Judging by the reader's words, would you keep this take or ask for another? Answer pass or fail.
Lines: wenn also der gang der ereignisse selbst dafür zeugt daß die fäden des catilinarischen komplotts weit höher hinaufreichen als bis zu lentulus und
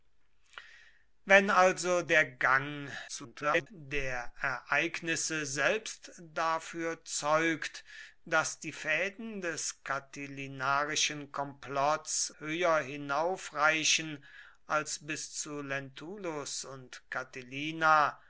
fail